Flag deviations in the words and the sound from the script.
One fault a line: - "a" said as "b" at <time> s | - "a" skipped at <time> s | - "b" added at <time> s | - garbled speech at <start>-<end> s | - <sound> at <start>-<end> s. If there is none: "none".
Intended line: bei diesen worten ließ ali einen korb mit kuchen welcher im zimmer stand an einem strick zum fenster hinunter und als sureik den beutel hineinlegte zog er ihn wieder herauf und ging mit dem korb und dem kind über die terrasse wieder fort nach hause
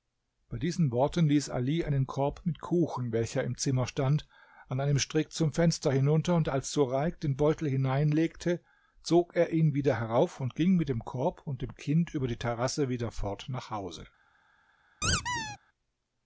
- squeak at 15.0-15.6 s